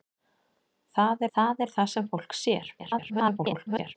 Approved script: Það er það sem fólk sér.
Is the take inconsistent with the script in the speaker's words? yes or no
yes